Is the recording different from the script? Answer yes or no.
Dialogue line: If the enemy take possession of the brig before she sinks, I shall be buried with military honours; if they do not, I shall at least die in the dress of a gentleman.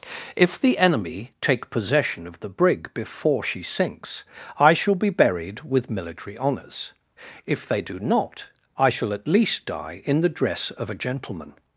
no